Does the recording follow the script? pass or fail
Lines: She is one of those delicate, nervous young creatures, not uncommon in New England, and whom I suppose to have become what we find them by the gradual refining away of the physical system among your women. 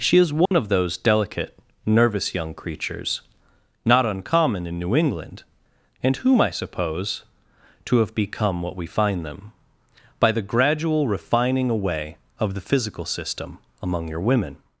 pass